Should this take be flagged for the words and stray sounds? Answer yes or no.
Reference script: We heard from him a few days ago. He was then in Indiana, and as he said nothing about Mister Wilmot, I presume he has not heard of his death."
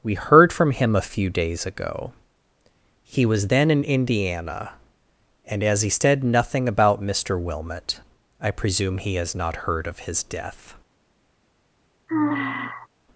yes